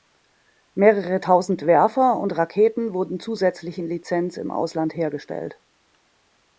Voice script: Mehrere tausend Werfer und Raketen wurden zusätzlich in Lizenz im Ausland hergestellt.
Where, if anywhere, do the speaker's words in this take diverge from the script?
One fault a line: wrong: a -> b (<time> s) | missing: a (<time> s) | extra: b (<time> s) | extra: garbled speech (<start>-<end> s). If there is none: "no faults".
no faults